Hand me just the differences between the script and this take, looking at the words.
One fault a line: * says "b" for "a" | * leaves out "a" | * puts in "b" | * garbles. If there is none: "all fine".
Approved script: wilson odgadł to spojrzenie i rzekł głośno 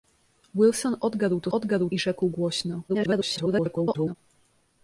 * says "odgadł" for "spojrzenie"
* garbles